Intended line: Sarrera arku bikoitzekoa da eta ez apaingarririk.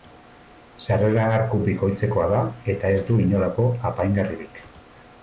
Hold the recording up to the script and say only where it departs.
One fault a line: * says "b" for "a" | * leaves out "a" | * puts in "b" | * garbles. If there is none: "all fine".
* puts in "du inolako"